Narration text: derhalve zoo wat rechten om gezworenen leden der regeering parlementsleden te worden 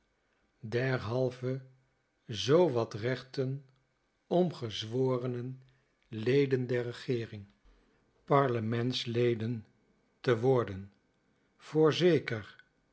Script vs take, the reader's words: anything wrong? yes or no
no